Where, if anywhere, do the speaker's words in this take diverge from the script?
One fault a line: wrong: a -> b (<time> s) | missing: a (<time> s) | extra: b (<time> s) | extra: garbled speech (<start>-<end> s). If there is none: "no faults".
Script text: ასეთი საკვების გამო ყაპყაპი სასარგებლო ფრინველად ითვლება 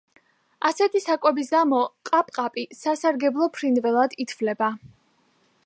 no faults